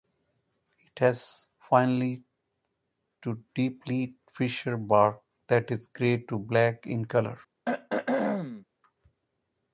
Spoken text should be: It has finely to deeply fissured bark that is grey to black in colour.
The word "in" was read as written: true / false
true